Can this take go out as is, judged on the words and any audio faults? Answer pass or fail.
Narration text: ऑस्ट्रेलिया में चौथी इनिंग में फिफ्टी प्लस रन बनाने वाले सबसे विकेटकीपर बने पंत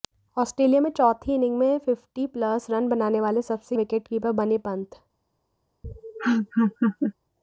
fail